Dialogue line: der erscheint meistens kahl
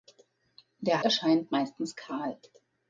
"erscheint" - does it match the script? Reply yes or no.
yes